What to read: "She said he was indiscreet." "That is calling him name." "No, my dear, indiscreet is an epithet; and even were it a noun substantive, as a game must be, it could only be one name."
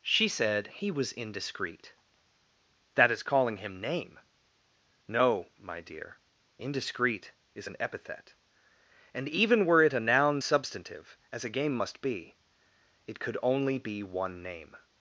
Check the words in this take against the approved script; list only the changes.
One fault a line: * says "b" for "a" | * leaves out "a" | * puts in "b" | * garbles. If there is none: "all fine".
all fine